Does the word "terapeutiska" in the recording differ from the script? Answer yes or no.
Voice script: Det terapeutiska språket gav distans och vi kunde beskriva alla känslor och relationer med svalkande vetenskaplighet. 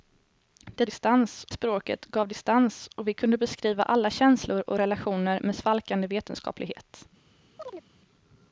yes